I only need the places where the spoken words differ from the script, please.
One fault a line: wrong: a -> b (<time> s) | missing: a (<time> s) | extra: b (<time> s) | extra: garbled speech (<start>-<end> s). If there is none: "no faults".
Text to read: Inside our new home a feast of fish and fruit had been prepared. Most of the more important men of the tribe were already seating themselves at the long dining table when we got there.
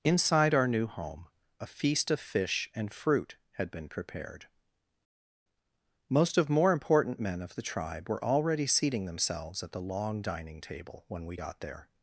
missing: the (6.5 s)